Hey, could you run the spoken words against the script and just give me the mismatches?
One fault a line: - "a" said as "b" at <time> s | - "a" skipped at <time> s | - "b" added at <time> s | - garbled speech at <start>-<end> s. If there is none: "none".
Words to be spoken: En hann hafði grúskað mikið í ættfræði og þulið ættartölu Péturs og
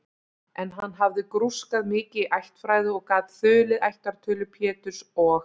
- "gat" added at 3.1 s